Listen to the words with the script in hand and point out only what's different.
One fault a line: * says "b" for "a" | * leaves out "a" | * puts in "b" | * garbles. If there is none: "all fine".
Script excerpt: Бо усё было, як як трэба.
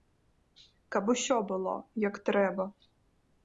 * says "Каб" for "Бо"
* leaves out "як"